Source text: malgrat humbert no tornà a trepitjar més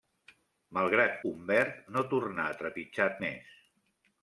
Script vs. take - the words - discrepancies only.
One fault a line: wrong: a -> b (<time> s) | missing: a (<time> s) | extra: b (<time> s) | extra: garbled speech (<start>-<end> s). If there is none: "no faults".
no faults